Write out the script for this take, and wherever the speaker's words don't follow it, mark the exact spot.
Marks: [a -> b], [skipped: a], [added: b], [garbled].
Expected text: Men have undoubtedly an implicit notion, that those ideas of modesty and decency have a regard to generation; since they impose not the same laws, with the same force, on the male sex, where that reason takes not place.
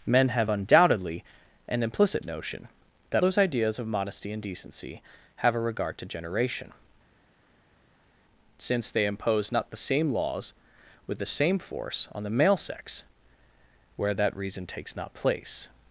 Men have undoubtedly an implicit notion, that those ideas of modesty and decency have a regard to generation; since they impose not the same laws, with the same force, on the male sex, where that reason takes not place.